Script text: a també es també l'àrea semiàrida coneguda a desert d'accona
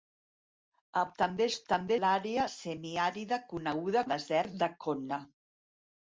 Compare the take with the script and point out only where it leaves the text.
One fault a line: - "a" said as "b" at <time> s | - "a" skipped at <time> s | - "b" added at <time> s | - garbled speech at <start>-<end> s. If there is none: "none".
none